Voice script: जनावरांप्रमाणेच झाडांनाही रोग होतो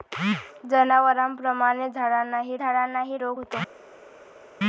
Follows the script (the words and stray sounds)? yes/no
no